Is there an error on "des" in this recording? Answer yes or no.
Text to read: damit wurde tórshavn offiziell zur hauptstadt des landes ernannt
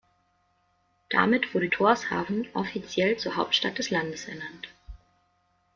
no